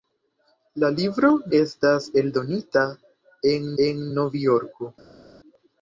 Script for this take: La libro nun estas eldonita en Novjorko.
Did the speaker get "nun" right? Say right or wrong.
wrong